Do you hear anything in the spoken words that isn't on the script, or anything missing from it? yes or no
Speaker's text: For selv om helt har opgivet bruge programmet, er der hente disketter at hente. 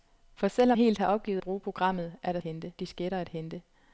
no